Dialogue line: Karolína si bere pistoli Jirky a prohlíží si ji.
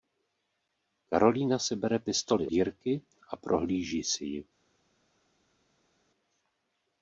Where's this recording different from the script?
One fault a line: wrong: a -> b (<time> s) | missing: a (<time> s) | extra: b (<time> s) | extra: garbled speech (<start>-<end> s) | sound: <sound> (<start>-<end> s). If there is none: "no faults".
no faults